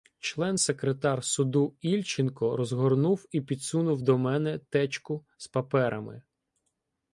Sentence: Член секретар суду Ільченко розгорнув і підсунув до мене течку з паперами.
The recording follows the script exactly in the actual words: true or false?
true